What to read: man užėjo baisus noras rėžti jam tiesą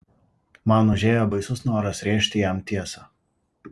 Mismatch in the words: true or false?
false